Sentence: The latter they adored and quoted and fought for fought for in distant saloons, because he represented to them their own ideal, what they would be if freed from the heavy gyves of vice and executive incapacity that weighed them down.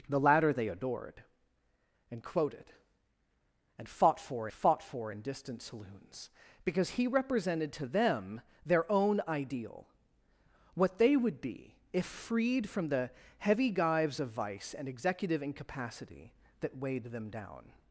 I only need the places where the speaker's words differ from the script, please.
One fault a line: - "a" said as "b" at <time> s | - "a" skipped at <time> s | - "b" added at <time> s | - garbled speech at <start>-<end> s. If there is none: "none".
none